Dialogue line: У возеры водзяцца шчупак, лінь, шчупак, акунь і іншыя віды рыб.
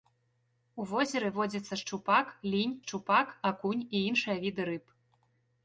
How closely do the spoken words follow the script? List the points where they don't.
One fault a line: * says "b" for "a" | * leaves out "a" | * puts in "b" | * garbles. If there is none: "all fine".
all fine